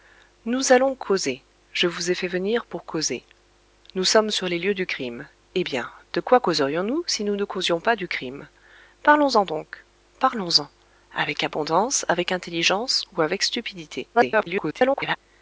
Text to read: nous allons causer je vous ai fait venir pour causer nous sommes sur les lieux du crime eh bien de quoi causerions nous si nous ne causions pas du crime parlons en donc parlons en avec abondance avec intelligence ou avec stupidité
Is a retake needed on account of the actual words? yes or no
yes